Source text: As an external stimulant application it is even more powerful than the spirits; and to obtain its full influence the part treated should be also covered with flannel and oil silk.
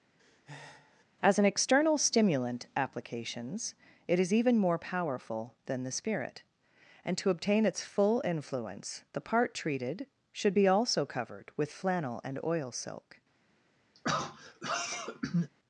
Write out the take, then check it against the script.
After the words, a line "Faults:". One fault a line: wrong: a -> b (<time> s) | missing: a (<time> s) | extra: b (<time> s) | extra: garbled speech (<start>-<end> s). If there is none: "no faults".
As an external stimulant applications it is even more powerful than the spirit; and to obtain its full influence the part treated should be also covered with flannel and oil silk.
Faults:
wrong: application -> applications (2.8 s)
wrong: spirits -> spirit (5.9 s)